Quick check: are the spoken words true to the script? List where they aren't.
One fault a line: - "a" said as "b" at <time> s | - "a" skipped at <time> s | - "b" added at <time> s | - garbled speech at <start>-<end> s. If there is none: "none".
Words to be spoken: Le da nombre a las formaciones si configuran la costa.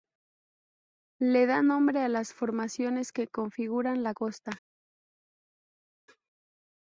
- "si" said as "que" at 3.1 s